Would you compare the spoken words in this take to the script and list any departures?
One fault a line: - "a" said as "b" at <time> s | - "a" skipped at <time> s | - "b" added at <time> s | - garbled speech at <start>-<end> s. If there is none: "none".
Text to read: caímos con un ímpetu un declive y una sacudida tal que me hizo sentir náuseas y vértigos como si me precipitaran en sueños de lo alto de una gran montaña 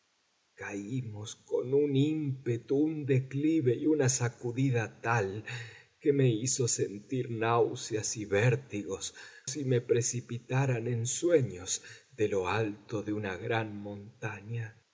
- "como" skipped at 9.1 s